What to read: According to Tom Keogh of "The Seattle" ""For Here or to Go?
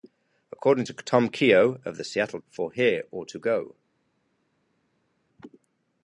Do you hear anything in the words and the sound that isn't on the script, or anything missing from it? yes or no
no